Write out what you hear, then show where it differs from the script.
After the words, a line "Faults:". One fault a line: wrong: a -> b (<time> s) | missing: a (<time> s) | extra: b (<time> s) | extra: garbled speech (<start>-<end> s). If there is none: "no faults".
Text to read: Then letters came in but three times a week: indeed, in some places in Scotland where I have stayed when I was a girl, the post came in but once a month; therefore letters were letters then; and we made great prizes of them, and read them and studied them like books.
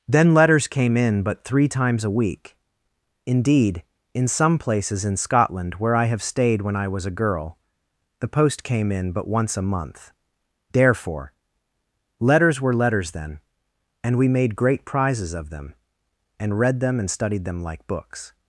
Then letters came in but three times a week: indeed, in some places in Scotland where I have stayed when I was a girl, the post came in but once a month; therefore letters were letters then; and we made great prizes of them, and read them and studied them like books.
Faults:
no faults